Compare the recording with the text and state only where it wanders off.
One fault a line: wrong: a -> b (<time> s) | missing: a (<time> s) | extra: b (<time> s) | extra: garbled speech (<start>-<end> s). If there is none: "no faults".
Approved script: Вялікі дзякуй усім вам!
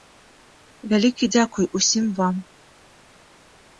no faults